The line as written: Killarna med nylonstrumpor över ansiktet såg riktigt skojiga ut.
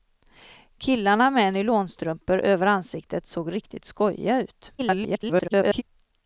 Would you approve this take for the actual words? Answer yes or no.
no